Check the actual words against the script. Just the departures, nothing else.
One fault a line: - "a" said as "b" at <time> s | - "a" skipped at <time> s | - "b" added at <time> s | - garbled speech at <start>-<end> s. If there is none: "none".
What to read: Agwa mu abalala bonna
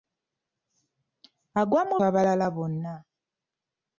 none